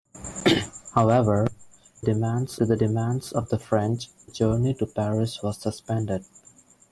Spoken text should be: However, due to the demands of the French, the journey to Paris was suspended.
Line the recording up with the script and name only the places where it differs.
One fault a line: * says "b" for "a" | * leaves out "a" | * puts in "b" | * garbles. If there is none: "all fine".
* says "demands" for "due"
* leaves out "the"